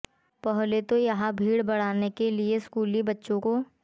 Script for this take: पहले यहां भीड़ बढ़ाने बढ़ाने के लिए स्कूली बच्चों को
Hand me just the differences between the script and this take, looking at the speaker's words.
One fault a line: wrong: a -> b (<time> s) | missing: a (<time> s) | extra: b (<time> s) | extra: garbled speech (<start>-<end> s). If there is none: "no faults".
extra: तो (0.8 s)
missing: बढ़ाने (2.1 s)